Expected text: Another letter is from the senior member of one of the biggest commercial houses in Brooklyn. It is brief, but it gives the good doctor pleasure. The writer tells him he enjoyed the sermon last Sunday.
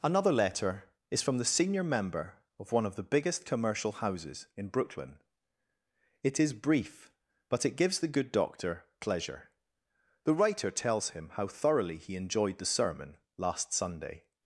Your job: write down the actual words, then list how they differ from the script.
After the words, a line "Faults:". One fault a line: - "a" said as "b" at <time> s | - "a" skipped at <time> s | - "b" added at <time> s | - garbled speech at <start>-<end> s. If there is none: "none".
Another letter is from the senior member of one of the biggest commercial houses in Brooklyn. It is brief, but it gives the good doctor pleasure. The writer tells him how thoroughly he enjoyed the sermon last Sunday.
Faults:
- "how thoroughly" added at 11.3 s